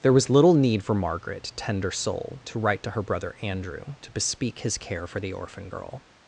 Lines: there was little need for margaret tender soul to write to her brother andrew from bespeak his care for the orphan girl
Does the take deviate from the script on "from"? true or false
true